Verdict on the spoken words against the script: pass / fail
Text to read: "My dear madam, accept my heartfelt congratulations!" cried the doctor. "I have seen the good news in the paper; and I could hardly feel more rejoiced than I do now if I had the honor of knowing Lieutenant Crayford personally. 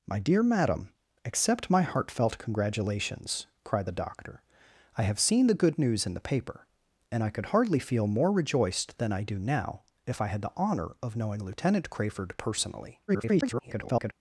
fail